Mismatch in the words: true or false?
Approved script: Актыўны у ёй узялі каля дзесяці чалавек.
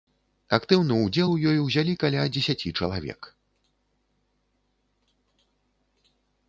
true